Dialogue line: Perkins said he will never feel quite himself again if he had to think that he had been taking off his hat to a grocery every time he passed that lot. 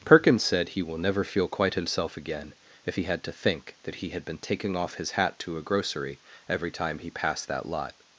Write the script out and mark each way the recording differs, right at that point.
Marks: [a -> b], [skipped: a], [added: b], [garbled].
Perkins said he will never feel quite himself again if he had to think that he had been taking off his hat to a grocery every time he passed that lot.